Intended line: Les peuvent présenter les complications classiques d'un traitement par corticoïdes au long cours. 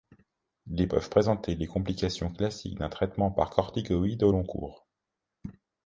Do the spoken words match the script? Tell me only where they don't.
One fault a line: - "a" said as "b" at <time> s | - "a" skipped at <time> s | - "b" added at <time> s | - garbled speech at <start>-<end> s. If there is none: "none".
none